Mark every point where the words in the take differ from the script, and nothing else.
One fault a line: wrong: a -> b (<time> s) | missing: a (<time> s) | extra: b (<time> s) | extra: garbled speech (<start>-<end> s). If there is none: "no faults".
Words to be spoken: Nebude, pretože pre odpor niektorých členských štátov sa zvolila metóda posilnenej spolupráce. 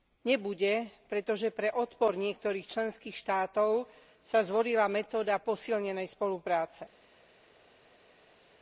no faults